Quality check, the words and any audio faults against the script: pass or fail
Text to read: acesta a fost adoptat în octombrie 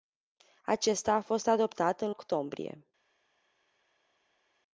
pass